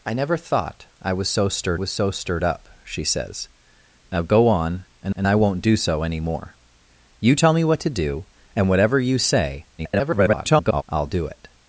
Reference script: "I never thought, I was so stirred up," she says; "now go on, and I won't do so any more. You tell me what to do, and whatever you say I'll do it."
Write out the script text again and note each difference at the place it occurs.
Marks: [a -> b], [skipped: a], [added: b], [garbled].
"I never thought, I was so stirred [added: was so stirred] up," she says; "now go on, and [added: and] I won't do so any more. You tell me what to do, and whatever you say [garbled] I'll do it."